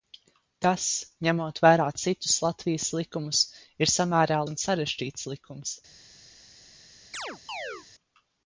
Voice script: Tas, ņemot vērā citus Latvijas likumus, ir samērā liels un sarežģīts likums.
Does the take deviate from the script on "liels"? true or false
true